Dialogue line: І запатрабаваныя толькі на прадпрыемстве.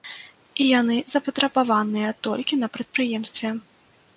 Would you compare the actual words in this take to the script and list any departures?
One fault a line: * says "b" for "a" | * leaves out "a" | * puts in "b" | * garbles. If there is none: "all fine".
* puts in "яны"